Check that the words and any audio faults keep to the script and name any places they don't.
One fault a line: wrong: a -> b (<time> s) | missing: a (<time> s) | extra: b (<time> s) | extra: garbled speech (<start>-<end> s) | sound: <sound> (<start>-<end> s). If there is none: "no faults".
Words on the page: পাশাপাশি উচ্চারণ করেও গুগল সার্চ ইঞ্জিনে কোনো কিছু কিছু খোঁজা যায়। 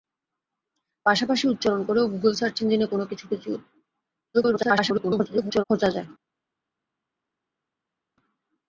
extra: garbled speech (4.3-5.6 s)